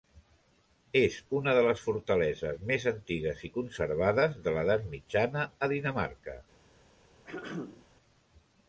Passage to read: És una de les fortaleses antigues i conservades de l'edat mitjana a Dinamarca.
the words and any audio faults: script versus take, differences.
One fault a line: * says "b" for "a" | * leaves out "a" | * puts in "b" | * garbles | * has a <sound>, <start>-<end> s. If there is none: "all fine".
* puts in "més"
* has a throat clearing, 7.2-7.9 s